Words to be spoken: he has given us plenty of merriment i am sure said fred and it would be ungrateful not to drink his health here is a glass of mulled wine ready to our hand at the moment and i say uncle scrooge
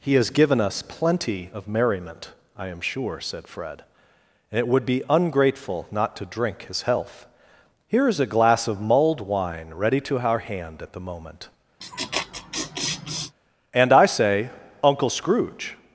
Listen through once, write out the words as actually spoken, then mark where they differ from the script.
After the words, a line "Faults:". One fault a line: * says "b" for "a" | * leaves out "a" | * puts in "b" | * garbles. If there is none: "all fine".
he has given us plenty of merriment i am sure said fred and it would be ungrateful not to drink his health here is a glass of mulled wine ready to our hand at the moment and i say uncle scrooge
Faults:
all fine